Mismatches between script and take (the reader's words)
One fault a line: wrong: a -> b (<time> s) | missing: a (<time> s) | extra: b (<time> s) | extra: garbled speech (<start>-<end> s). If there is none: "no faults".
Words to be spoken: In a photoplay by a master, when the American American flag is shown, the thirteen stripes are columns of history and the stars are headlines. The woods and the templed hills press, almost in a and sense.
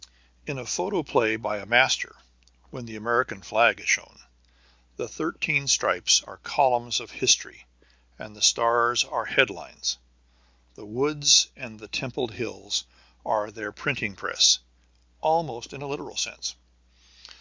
missing: American (3.4 s)
extra: are their printing (13.3 s)
wrong: and -> literal (15.9 s)